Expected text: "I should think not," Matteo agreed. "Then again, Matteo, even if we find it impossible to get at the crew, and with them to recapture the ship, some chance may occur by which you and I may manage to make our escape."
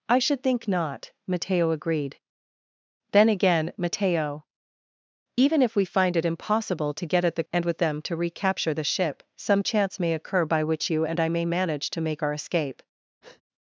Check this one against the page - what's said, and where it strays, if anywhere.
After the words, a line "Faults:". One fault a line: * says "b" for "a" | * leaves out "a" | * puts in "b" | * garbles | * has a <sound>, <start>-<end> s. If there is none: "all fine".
"I should think not," Matteo agreed. "Then again, Matteo, even if we find it impossible to get at the and with them to recapture the ship, some chance may occur by which you and I may manage to make our escape."
Faults:
* leaves out "crew"
* has a breath, 13.2-13.4 s